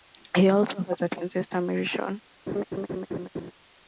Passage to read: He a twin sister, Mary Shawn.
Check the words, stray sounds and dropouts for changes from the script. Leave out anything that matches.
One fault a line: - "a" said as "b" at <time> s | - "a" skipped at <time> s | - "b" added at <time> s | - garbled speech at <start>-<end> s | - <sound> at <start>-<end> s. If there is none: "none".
- "also has" added at 0.5 s
- laugh at 2.5-3.5 s